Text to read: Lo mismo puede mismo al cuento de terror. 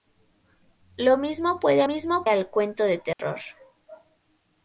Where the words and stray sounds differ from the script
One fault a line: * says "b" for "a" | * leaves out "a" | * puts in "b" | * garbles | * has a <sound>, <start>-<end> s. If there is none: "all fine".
* has a dropout, 3.1-3.2 s